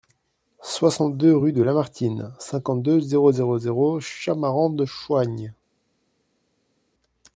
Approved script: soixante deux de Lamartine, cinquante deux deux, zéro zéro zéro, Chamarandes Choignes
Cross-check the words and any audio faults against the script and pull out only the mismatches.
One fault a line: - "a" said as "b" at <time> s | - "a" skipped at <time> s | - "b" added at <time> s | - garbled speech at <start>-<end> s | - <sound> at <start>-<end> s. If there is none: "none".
- "rue" added at 1.4 s
- "deux" skipped at 3.0 s